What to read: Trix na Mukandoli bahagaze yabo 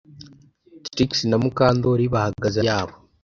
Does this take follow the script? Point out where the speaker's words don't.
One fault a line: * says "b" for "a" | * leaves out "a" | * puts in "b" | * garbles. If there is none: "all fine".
all fine